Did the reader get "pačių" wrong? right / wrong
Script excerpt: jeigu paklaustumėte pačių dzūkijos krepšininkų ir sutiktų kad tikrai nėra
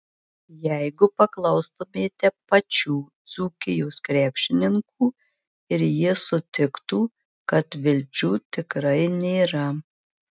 right